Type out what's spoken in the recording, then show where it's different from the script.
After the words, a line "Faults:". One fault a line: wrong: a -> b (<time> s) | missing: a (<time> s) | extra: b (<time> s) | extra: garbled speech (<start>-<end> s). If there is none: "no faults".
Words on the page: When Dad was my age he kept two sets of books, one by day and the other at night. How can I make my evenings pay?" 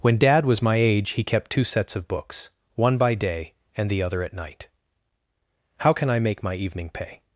When Dad was my age he kept two sets of books, one by day and the other at night. How can I make my evening pay?"
Faults:
wrong: evenings -> evening (6.5 s)